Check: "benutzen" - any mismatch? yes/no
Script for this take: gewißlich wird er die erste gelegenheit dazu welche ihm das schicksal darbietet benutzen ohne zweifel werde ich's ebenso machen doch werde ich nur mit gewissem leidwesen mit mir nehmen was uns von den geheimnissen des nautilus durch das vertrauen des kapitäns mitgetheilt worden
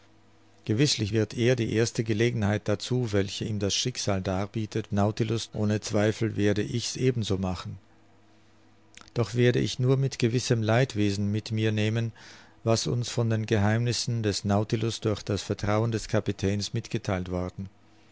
yes